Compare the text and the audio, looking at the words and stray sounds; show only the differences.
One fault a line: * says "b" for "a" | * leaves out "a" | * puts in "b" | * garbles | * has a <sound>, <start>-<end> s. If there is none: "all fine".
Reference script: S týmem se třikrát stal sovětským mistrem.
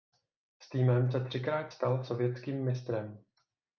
all fine